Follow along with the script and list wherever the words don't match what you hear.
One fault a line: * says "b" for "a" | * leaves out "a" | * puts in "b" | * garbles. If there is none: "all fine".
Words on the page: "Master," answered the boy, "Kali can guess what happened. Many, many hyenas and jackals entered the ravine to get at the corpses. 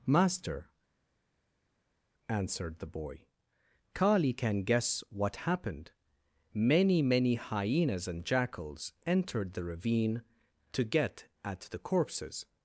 all fine